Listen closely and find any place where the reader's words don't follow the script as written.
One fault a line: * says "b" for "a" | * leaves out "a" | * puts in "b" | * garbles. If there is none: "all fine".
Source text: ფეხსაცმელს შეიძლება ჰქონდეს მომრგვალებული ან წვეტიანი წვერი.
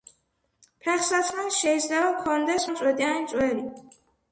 * leaves out "მომრგვალებული"